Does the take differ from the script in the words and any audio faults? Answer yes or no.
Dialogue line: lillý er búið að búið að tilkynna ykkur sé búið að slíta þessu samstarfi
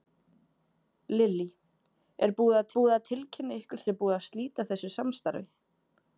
no